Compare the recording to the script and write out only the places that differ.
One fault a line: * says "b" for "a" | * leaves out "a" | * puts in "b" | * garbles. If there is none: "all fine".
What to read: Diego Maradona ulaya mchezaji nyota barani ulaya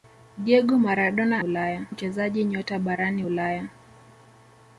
all fine